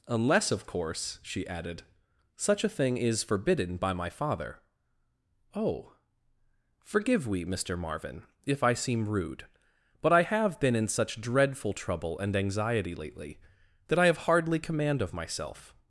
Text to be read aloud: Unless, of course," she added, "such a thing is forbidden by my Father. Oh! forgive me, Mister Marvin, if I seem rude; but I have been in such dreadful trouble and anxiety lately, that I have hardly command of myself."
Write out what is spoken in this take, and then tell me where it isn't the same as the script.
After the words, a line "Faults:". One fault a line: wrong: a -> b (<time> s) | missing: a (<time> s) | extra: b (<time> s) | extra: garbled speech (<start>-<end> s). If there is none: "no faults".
Unless, of course," she added, "such a thing is forbidden by my Father. Oh! forgive we, Mister Marvin, if I seem rude; but I have been in such dreadful trouble and anxiety lately, that I have hardly command of myself."
Faults:
wrong: me -> we (7.3 s)